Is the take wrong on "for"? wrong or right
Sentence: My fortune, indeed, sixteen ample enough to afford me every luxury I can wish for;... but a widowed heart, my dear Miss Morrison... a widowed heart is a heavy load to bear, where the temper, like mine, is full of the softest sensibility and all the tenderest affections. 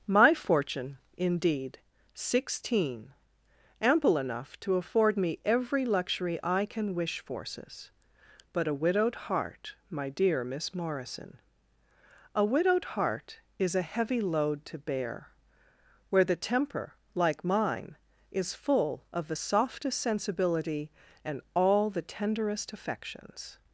wrong